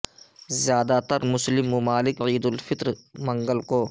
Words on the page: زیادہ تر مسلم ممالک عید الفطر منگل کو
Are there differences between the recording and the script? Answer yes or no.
no